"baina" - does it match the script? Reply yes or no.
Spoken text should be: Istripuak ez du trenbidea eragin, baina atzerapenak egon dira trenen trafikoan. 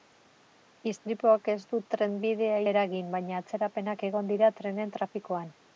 yes